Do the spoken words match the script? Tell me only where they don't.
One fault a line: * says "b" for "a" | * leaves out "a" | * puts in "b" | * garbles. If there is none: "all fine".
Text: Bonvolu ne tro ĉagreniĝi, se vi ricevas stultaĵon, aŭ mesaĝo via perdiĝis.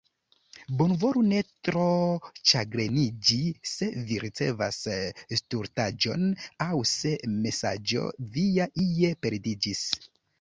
* puts in "se"
* puts in "ie"